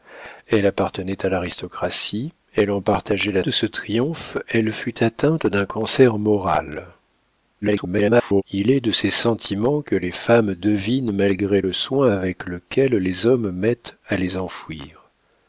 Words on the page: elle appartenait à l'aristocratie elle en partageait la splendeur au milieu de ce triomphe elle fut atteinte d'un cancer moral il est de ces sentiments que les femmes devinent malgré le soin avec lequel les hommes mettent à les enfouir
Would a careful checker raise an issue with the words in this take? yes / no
yes